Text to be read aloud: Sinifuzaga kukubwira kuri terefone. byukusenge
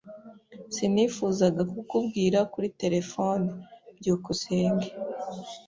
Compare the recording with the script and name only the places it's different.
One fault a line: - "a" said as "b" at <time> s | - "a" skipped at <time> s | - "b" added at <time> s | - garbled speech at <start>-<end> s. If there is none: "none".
none